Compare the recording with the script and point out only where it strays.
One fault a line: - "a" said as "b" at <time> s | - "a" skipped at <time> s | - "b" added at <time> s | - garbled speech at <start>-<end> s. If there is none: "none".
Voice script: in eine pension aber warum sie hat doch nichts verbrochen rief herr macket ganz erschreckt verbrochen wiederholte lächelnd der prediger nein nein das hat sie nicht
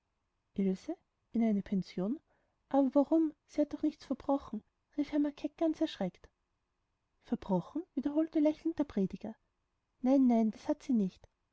none